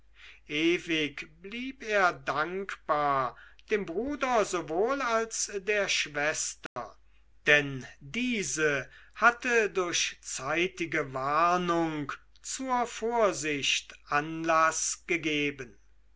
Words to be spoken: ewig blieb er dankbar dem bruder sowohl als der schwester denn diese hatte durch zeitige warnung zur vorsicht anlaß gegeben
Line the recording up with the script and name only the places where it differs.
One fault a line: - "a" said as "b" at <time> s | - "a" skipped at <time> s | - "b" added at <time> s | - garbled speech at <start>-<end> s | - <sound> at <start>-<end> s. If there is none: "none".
- dropout at 6.7-6.8 s